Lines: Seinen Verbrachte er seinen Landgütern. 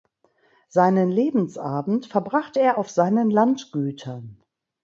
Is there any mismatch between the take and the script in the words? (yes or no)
yes